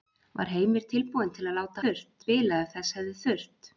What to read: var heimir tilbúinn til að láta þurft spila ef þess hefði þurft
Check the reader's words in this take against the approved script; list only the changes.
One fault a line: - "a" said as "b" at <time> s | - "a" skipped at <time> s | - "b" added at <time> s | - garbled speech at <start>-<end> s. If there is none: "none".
none